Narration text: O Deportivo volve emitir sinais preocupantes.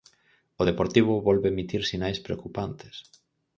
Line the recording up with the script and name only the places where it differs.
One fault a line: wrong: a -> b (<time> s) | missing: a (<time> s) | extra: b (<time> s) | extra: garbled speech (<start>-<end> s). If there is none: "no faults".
no faults